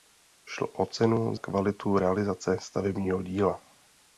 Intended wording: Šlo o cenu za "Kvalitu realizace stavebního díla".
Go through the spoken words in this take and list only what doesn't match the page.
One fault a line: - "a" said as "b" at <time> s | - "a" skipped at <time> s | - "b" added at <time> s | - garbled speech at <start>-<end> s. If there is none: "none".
- "za" skipped at 1.4 s